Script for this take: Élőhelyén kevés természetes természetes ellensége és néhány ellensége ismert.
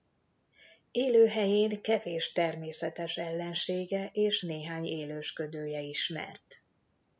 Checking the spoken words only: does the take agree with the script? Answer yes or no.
no